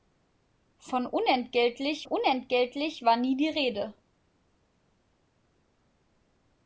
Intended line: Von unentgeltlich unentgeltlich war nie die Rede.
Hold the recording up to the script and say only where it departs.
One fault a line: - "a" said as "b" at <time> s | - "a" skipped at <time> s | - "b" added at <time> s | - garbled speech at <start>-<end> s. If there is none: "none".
none